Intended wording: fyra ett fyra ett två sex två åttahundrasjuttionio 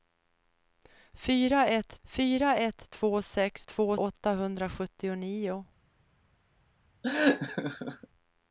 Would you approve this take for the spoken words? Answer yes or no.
yes